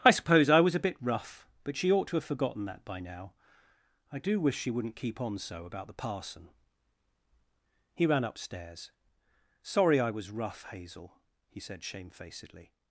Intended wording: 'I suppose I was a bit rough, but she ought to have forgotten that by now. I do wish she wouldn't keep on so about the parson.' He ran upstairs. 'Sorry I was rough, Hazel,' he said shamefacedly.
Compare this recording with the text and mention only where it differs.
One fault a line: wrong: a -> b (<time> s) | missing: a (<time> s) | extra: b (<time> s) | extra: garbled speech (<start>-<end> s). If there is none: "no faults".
no faults